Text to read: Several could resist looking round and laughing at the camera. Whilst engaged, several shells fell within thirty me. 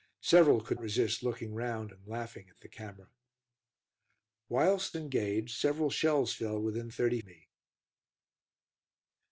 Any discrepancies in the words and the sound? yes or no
no